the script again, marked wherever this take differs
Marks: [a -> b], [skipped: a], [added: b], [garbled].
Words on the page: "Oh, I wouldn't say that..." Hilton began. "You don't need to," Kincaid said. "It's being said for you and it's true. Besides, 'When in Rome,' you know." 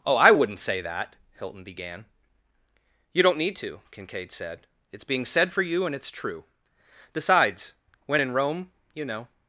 "Oh, I wouldn't say that..." Hilton began. "You don't need to," Kincaid said. "It's being said for you and it's true. Besides, 'When in Rome,' you know."